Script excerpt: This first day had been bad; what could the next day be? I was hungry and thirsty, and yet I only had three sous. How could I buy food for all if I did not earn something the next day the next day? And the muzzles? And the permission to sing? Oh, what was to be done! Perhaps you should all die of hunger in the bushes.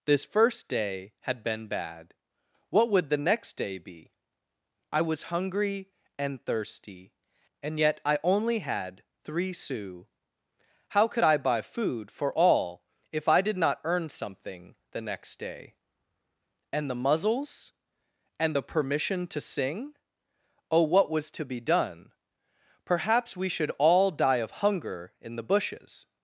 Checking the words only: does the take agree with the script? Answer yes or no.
no